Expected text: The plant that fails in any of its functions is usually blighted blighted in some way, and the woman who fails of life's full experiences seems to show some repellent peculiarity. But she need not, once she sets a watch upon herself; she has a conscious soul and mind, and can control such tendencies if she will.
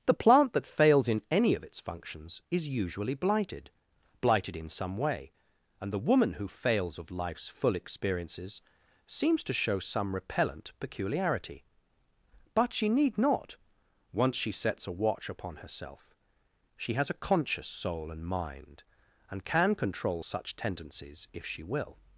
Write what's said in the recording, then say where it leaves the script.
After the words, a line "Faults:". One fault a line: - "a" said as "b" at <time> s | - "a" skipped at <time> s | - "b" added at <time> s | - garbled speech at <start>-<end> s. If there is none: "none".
The plant that fails in any of its functions is usually blighted blighted in some way, and the woman who fails of life's full experiences seems to show some repellent peculiarity. But she need not, once she sets a watch upon herself; she has a conscious soul and mind, and can control such tendencies if she will.
Faults:
none